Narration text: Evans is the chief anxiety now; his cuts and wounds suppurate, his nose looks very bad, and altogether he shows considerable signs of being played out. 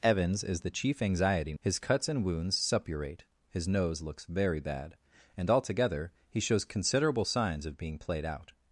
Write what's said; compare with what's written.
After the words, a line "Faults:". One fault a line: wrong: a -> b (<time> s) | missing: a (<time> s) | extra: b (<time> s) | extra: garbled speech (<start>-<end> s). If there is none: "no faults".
Evans is the chief anxiety; his cuts and wounds suppurate, his nose looks very bad, and altogether he shows considerable signs of being played out.
Faults:
missing: now (1.5 s)